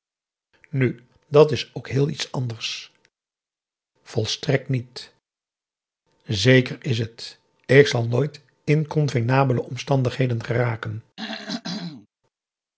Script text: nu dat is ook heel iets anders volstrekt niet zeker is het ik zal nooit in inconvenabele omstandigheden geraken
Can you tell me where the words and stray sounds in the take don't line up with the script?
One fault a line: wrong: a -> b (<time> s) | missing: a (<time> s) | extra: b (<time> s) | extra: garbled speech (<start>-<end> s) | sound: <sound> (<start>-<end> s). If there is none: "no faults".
missing: in (8.4 s)
sound: throat clearing (11.2-12.1 s)